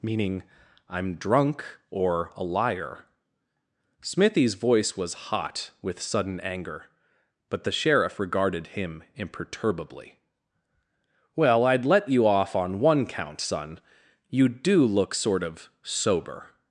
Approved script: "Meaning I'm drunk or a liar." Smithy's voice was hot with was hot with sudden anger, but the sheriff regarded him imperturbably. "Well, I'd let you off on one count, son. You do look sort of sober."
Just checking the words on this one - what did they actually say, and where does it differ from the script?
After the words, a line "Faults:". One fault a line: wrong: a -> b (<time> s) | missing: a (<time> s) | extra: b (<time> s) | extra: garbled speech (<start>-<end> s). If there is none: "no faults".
"Meaning I'm drunk or a liar." Smithy's voice was hot with sudden anger, but the sheriff regarded him imperturbably. "Well, I'd let you off on one count, son. You do look sort of sober."
Faults:
missing: was hot with (6.0 s)